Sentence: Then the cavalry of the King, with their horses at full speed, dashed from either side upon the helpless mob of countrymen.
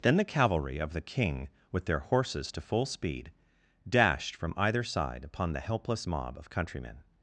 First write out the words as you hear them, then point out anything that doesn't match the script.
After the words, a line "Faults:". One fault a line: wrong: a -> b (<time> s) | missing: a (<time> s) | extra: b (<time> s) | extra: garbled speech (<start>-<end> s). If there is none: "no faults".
Then the cavalry of the King, with their horses to full speed, dashed from either side upon the helpless mob of countrymen.
Faults:
wrong: at -> to (2.5 s)